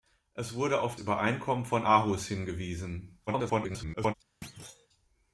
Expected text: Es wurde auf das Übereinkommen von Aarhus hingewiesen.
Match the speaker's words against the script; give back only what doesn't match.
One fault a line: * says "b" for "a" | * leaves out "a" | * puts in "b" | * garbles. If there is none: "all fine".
* leaves out "das"
* garbles